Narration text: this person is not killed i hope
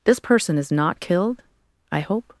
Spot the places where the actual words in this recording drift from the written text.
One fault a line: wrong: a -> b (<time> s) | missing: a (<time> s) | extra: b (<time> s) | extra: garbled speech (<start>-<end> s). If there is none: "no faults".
no faults